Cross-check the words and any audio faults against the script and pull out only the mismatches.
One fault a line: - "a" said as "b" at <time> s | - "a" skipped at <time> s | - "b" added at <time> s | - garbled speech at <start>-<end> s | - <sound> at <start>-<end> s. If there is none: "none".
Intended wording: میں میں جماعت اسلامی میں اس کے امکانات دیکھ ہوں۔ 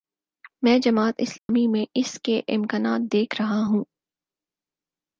- "میں" skipped at 0.8 s
- dropout at 1.4-1.5 s
- "رہا" added at 3.4 s